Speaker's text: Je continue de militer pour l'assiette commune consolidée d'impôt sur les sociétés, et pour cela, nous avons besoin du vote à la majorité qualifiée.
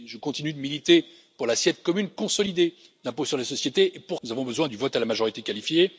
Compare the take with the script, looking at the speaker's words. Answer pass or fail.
fail